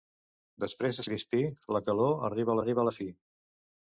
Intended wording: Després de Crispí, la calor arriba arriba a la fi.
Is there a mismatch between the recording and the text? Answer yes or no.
no